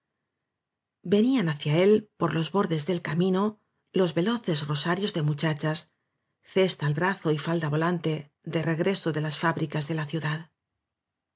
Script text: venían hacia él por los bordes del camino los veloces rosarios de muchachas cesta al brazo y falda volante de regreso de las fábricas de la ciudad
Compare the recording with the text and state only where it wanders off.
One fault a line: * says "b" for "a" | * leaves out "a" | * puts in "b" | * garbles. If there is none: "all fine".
all fine